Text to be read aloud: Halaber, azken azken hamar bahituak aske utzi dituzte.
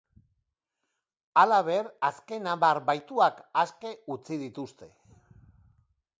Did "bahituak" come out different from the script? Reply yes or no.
no